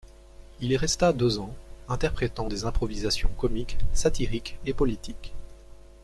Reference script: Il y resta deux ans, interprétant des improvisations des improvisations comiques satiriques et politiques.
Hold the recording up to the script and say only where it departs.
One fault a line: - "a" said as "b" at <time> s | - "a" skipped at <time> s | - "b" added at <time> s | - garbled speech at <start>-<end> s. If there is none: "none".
- "des improvisations" skipped at 3.3 s